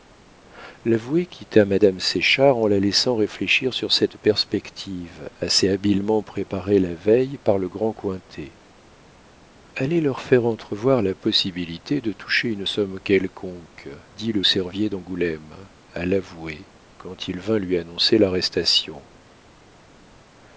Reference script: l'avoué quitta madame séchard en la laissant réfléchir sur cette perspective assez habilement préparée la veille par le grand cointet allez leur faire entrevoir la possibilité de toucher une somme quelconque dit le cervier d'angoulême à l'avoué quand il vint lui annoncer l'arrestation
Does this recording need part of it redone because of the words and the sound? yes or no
no